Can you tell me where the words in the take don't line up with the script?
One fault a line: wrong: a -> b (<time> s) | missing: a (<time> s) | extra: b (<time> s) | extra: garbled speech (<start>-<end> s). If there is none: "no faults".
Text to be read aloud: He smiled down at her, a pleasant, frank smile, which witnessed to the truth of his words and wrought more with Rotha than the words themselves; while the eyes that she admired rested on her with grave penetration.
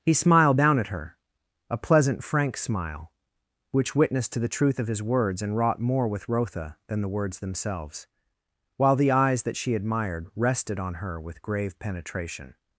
no faults